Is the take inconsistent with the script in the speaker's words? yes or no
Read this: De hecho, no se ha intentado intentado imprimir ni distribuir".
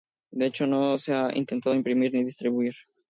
yes